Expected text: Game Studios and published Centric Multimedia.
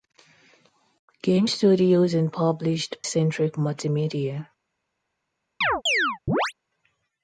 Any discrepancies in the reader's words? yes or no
no